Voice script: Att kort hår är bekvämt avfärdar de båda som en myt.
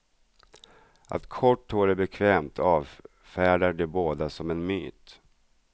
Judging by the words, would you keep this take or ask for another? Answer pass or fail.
pass